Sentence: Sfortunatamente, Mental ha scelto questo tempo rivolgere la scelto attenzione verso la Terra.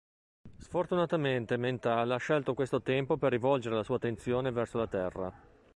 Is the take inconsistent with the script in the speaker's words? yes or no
yes